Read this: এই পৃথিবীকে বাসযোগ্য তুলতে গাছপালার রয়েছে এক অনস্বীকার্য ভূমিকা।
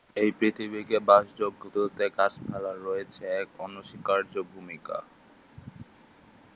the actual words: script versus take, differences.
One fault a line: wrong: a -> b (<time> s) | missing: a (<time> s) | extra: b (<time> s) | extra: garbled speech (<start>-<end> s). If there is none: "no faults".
no faults